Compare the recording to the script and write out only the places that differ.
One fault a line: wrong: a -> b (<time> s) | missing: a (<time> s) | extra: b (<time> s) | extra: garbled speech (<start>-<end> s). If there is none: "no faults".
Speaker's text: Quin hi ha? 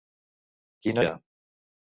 no faults